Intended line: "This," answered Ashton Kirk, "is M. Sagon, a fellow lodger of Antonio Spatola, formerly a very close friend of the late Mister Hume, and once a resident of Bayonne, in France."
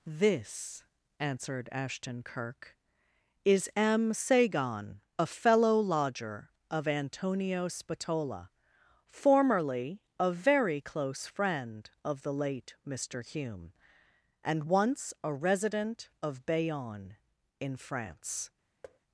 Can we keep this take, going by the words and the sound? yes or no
no